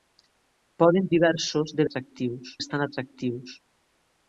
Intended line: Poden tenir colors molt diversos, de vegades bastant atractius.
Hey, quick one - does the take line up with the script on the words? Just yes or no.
no